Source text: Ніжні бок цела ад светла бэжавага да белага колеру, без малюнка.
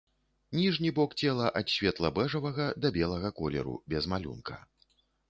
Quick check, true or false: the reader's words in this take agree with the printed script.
true